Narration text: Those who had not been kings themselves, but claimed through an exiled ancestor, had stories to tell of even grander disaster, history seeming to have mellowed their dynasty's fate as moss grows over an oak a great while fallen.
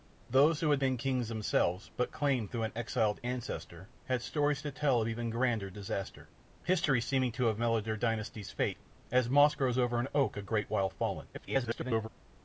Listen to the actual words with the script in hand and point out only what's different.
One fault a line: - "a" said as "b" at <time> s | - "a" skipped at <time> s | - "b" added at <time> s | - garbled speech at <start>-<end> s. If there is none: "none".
- "not" skipped at 0.8 s
- garbled speech at 11.3-12.1 s